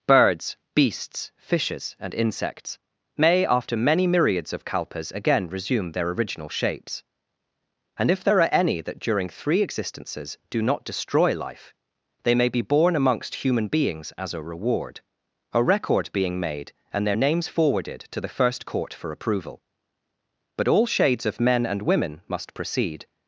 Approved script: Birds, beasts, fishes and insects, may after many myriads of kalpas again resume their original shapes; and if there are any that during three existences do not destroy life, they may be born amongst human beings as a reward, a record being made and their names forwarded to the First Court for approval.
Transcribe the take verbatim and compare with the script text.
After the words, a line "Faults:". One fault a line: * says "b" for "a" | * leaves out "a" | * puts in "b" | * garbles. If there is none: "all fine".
Birds, beasts, fishes and insects, may after many myriads of kalpas again resume their original shapes; and if there are any that during three existences do not destroy life, they may be born amongst human beings as a reward, a record being made and their names forwarded to the First Court for approval. But all shades of men and women must proceed
Faults:
* puts in "But all shades of men and women must proceed"